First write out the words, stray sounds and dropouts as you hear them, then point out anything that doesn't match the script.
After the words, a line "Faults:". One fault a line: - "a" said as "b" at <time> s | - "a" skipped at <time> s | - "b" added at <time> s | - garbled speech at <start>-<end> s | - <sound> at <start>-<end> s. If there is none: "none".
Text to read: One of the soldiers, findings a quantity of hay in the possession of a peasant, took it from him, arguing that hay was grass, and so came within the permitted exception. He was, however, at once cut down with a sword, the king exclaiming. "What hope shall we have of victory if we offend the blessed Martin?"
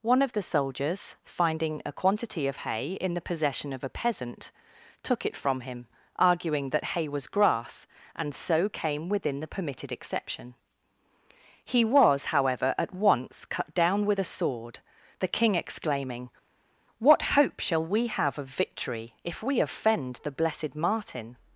One of the soldiers, finding a quantity of hay in the possession of a peasant, took it from him, arguing that hay was grass, and so came within the permitted exception. He was, however, at once cut down with a sword, the king exclaiming. "What hope shall we have of victory if we offend the blessed Martin?"
Faults:
- "findings" said as "finding" at 1.2 s